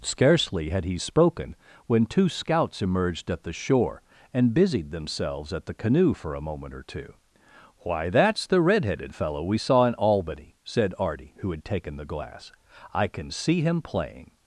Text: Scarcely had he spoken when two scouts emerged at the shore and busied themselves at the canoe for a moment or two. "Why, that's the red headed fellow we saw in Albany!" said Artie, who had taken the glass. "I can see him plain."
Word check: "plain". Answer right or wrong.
wrong